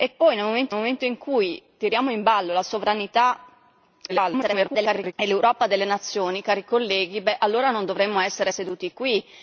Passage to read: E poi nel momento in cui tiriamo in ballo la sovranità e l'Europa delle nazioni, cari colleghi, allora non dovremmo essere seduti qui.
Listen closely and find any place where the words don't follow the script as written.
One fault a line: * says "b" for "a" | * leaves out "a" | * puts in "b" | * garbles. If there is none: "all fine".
* puts in "momento"
* garbles